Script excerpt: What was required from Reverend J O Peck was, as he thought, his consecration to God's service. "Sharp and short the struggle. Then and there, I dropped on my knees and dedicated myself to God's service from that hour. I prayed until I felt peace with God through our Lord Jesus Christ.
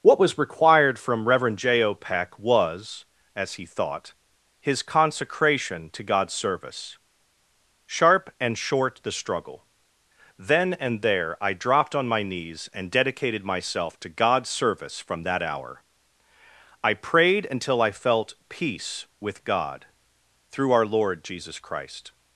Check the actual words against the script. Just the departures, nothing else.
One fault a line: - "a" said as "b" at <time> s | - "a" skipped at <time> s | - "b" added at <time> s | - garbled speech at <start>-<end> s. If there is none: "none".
none